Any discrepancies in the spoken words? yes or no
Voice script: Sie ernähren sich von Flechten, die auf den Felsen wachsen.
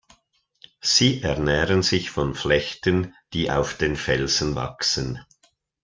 no